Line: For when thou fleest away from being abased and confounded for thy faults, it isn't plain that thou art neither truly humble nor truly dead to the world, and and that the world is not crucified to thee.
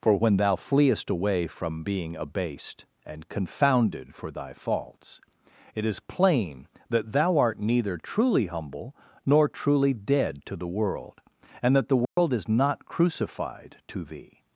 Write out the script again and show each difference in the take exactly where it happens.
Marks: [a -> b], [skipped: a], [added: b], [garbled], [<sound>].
For when thou fleest away from being abased and confounded for thy faults, it [isn't -> is] plain that thou art neither truly humble nor truly dead to the world, and [skipped: and] that the world [dropout] is not crucified to thee.